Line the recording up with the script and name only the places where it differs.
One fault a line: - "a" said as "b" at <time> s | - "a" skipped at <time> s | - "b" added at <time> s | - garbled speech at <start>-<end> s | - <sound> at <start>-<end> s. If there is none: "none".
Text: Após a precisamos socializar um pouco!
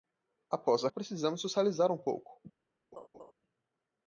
- laugh at 2.9-3.3 s